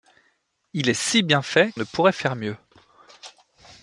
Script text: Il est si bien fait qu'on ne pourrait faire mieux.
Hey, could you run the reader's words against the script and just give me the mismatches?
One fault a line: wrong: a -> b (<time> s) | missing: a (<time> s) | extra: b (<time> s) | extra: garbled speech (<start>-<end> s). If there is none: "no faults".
missing: qu'on (1.7 s)